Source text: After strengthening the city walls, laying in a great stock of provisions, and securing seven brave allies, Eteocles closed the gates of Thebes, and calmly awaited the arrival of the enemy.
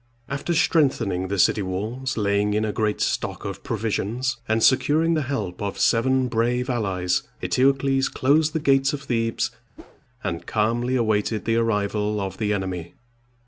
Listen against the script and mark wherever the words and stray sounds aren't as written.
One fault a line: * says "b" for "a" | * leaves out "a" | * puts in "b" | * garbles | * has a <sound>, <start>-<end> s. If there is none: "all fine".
* puts in "the help of"
* has a whoosh, 9.8-10.0 s